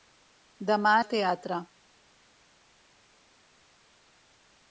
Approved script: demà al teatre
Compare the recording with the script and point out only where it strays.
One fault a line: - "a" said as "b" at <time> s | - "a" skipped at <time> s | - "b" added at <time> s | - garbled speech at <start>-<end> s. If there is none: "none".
none